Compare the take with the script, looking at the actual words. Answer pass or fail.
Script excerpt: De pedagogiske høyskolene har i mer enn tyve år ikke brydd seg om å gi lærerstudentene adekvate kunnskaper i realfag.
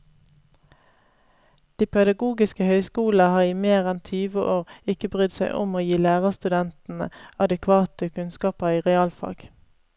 pass